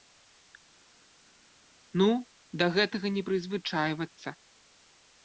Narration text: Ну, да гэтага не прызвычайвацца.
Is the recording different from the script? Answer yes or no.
no